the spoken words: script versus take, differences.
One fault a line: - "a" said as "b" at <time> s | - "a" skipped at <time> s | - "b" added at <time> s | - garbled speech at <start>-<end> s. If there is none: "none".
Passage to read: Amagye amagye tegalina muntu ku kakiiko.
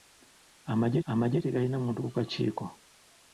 none